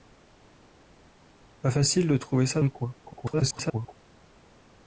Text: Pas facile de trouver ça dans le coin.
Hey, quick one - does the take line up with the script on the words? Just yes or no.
no